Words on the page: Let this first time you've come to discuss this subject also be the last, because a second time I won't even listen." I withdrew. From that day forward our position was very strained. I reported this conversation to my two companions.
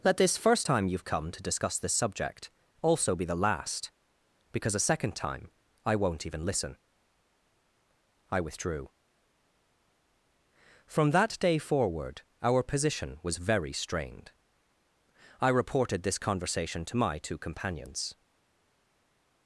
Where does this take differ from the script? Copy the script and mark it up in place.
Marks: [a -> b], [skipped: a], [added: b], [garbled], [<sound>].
Let this first time you've come to discuss this subject also be the last, because a second time I won't even listen." I withdrew. From that day forward our position was very strained. I reported this conversation to my two companions.